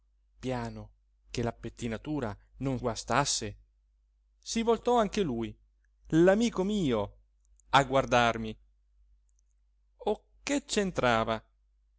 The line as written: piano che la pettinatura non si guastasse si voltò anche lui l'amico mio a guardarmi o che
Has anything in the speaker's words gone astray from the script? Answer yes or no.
yes